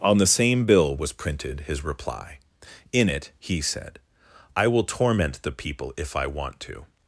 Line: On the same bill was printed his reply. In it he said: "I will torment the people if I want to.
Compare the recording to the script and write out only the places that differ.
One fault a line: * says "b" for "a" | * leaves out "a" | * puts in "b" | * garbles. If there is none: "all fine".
all fine